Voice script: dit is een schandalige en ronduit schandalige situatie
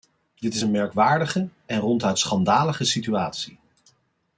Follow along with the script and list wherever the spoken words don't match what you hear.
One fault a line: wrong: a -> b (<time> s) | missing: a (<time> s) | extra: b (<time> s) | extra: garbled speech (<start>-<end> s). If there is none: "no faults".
wrong: schandalige -> merkwaardige (0.7 s)